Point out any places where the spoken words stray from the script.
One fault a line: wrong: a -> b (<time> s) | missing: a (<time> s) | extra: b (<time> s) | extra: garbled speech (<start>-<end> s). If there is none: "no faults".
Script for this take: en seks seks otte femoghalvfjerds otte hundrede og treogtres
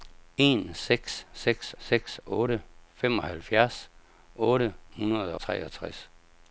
extra: seks (1.8 s)
missing: og (5.3 s)